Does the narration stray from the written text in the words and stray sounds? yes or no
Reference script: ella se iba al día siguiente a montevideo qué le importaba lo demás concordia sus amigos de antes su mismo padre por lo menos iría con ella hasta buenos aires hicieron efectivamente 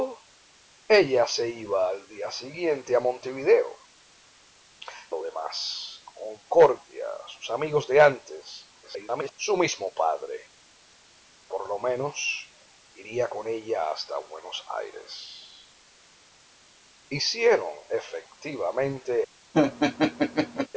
yes